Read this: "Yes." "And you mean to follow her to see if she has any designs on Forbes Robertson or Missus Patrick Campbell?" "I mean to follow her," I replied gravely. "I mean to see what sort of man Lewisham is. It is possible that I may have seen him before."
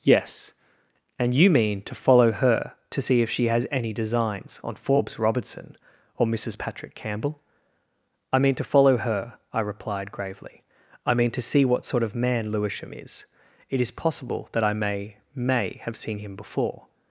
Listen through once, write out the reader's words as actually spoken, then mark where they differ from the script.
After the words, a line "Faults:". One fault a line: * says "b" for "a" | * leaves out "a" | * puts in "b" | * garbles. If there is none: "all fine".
"Yes." "And you mean to follow her to see if she has any designs on Forbes Robertson or Missus Patrick Campbell?" "I mean to follow her," I replied gravely. "I mean to see what sort of man Lewisham is. It is possible that I may may have seen him before."
Faults:
* puts in "may"